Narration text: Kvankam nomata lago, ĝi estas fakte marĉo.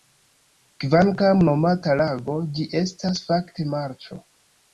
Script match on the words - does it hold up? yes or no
yes